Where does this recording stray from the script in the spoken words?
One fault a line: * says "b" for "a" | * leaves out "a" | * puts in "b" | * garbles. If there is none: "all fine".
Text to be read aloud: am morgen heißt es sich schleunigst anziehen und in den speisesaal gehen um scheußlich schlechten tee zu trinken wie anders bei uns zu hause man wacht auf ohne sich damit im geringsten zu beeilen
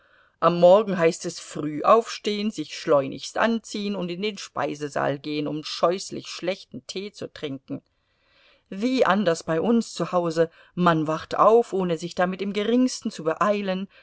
* puts in "früh aufstehen"